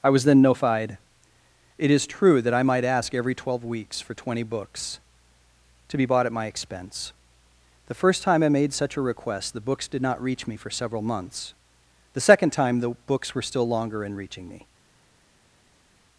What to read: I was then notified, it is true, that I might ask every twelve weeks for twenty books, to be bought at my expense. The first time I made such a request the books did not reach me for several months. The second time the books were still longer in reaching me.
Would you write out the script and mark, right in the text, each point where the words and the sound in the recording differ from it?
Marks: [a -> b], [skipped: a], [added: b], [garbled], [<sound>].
I was then notified, it is true, that I might ask every twelve weeks for twenty books, to be bought at my expense. The first time I made such a request the books did not reach me for several months. The second time the books were still longer in reaching me.